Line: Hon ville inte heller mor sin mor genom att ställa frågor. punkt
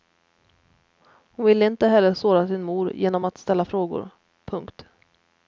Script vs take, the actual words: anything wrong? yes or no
yes